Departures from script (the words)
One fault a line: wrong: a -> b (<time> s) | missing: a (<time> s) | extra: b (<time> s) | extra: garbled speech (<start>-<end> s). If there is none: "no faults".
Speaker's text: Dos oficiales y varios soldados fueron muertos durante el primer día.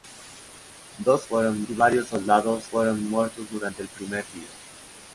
wrong: oficiales -> fueron (1.2 s)